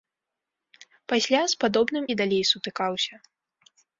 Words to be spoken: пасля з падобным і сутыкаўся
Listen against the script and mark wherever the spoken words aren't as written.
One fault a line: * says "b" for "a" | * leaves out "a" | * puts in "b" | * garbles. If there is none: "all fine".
* puts in "далей"